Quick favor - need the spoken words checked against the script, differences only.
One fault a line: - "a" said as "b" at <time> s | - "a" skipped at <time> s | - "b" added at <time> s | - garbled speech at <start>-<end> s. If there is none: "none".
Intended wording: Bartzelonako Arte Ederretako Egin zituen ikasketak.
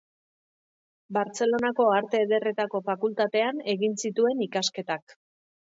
- "Fakultatean" added at 2.9 s